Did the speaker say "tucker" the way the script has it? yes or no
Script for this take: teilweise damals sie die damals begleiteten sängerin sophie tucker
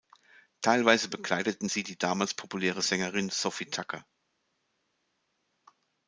yes